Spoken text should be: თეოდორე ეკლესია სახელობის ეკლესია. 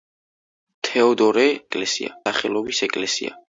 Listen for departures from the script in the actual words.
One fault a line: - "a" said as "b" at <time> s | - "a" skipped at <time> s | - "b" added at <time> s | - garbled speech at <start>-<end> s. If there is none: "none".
none